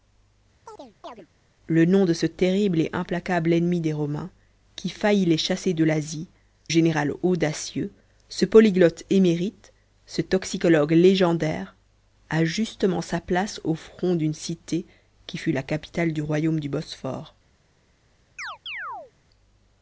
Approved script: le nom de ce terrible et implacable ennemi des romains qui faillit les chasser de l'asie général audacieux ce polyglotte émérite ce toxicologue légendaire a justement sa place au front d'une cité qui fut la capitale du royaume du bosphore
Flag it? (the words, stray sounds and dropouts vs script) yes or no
yes